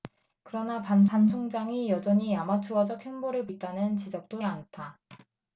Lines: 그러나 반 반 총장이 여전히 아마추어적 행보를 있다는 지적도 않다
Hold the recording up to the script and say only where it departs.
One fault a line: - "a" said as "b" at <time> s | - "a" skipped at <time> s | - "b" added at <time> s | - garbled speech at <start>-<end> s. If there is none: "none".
none